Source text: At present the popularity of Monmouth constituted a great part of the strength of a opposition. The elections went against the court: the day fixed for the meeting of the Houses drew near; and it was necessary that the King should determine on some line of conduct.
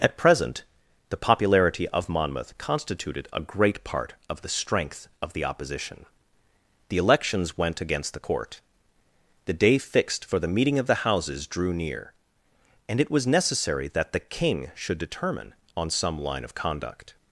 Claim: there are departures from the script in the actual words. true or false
true